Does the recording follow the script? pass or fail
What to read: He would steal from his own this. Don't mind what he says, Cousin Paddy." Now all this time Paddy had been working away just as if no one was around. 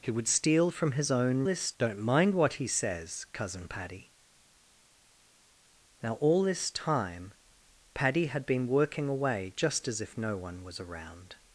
pass